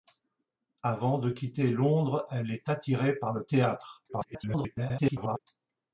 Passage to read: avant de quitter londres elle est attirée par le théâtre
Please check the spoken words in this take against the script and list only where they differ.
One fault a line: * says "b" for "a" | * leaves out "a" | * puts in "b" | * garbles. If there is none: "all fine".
* garbles